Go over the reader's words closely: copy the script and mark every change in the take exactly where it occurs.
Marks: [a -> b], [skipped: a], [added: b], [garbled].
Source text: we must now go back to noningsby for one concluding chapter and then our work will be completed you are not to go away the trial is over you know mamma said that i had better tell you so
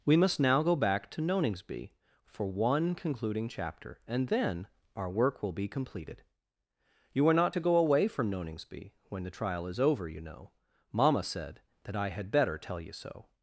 we must now go back to noningsby for one concluding chapter and then our work will be completed you are not to go away [added: from noningsby when] the trial is over you know mamma said that i had better tell you so